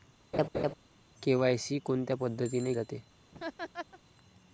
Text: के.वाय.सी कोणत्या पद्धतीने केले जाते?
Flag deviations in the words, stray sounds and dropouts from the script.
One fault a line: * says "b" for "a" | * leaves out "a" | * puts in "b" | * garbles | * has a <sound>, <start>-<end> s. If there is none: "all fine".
* has a laugh, 0.3-0.7 s
* leaves out "केले"
* has a laugh, 3.3-4.0 s